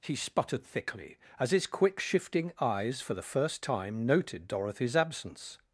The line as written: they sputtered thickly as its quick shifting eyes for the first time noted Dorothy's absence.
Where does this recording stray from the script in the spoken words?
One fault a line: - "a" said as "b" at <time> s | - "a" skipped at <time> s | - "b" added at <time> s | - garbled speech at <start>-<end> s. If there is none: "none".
- "they" said as "he" at 0.0 s
- "its" said as "his" at 1.5 s